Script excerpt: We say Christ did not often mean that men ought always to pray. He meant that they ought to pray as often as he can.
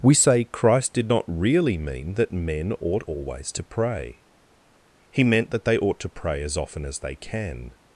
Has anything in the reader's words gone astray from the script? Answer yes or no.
yes